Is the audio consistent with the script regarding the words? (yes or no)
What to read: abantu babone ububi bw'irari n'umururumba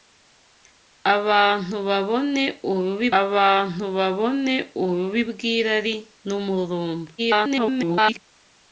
no